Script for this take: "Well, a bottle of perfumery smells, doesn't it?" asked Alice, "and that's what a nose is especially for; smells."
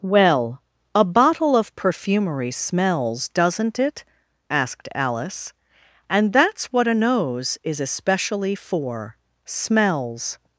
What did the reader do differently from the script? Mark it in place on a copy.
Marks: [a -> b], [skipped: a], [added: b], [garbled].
"Well, a bottle of perfumery smells, doesn't it?" asked Alice, "and that's what a nose is especially for; smells."